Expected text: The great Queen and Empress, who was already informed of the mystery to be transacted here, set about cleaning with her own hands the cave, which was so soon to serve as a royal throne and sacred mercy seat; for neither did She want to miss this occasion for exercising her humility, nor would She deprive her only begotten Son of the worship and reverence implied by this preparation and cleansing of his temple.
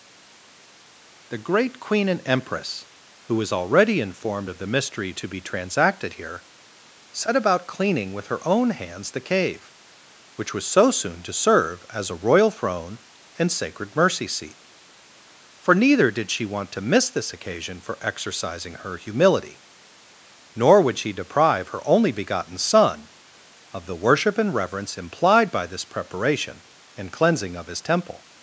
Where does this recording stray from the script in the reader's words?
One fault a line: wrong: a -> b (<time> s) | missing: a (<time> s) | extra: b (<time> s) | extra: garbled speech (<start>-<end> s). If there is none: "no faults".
no faults